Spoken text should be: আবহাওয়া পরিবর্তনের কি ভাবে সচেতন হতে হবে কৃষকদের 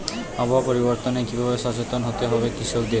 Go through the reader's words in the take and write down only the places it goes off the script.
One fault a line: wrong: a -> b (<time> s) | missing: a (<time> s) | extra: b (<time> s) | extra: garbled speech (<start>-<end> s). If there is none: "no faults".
no faults